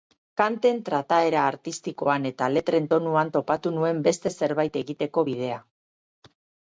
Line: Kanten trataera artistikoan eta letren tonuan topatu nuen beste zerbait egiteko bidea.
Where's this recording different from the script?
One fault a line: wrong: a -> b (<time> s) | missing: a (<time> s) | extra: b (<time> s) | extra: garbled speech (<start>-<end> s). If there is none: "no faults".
no faults